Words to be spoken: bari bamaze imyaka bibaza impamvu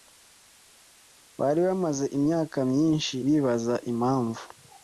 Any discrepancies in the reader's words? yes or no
yes